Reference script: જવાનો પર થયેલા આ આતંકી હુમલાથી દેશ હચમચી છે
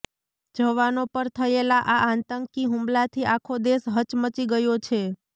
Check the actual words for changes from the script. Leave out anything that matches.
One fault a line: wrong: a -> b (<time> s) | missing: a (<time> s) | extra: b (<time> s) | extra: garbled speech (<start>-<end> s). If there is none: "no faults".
extra: આખો (3.3 s)
extra: ગયો (4.5 s)